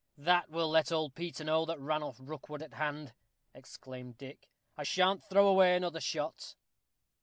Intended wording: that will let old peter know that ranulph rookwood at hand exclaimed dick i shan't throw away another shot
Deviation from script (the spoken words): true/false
false